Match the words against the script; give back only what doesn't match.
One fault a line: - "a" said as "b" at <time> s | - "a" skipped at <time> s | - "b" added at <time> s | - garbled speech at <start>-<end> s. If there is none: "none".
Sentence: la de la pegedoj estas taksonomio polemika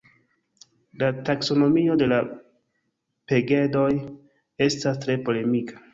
- "taksonomio" added at 1.3 s
- "taksonomio" said as "tre" at 5.1 s